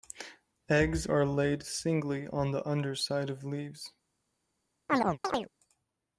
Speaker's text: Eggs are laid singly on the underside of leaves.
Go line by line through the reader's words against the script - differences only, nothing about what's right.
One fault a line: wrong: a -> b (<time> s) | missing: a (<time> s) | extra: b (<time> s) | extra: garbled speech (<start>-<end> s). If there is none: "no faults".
no faults